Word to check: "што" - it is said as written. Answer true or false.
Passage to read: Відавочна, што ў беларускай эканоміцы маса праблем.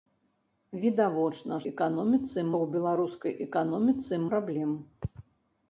false